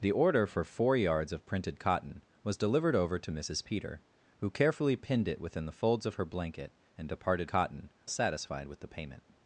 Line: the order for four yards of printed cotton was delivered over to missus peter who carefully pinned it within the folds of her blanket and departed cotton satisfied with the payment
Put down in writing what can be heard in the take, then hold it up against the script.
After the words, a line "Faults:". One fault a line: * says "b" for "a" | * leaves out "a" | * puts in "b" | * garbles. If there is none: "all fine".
the order for four yards of printed cotton was delivered over to missus peter who carefully pinned it within the folds of her blanket and departed cotton satisfied with the payment
Faults:
all fine